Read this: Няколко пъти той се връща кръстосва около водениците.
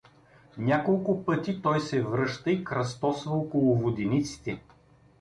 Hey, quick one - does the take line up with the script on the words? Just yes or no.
no